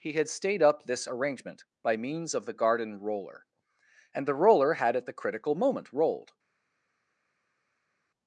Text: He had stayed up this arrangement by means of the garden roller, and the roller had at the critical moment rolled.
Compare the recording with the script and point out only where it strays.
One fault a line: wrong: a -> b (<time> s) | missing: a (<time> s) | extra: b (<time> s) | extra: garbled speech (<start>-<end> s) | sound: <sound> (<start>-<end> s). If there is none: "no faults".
no faults